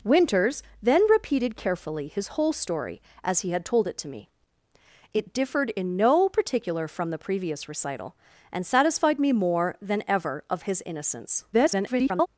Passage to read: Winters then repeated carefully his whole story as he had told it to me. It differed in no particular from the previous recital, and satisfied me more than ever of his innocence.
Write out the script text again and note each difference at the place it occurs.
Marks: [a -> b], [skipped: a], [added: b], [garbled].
Winters then repeated carefully his whole story as he had told it to me. It differed in no particular from the previous recital, and satisfied me more than ever of his innocence. [garbled]